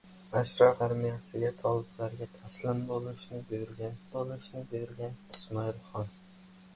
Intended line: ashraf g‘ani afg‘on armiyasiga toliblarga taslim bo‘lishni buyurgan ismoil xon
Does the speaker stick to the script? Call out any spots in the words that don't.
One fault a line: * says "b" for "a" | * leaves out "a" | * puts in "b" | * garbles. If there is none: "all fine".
* leaves out "g‘ani afg‘on"
* puts in "bo‘lishni buyurgan"